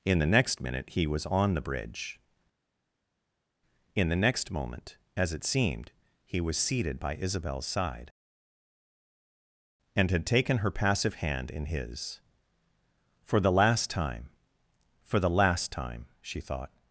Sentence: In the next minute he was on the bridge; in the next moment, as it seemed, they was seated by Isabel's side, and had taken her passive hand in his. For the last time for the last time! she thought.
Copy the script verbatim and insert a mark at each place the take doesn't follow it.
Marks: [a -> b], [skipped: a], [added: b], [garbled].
In the next minute he was on the bridge; in the next moment, as it seemed, [they -> he] was seated by Isabel's side, and had taken her passive hand in his. For the last time for the last time! she thought.